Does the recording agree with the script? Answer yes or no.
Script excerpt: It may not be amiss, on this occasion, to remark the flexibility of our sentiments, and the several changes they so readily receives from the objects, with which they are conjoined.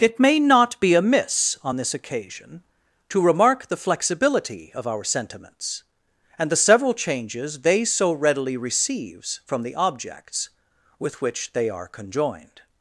yes